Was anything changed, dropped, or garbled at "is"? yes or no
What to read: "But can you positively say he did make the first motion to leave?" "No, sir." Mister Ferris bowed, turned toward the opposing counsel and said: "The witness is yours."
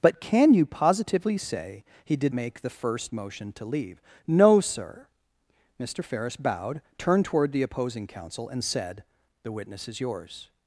no